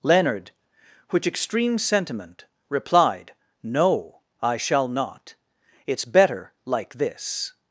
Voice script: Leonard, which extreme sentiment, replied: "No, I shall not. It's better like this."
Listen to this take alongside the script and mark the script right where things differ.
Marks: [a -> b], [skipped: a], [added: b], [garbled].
Leonard, which extreme sentiment, replied: "No, I shall not. It's better like this."